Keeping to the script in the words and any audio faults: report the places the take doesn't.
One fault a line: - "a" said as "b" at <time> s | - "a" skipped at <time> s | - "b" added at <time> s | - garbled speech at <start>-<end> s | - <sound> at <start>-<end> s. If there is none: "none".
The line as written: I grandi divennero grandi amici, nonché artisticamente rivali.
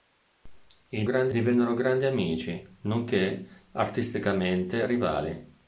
none